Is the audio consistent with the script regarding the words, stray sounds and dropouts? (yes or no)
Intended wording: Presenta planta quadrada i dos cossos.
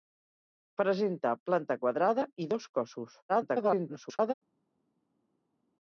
no